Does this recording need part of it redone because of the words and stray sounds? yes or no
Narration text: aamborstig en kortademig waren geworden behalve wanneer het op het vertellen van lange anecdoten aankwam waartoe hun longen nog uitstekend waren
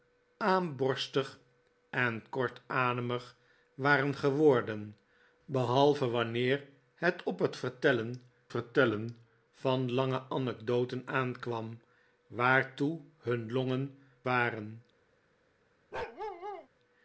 yes